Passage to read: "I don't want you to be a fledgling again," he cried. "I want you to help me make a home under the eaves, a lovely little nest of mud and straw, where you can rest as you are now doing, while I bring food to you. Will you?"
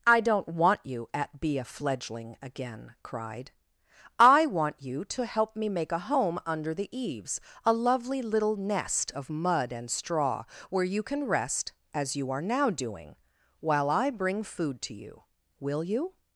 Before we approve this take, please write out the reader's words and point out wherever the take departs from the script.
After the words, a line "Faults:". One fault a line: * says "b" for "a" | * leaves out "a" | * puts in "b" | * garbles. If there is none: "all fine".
"I don't want you at be a fledgling again," cried. "I want you to help me make a home under the eaves, a lovely little nest of mud and straw, where you can rest as you are now doing, while I bring food to you. Will you?"
Faults:
* says "at" for "to"
* leaves out "he"